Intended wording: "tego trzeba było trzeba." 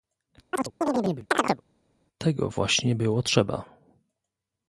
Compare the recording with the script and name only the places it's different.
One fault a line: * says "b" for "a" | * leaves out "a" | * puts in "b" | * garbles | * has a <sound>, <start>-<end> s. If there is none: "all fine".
* has a chirp, 0.5-1.6 s
* says "właśnie" for "trzeba"